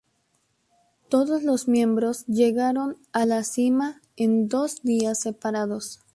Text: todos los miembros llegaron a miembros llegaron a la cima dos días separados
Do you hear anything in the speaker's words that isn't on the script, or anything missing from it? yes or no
yes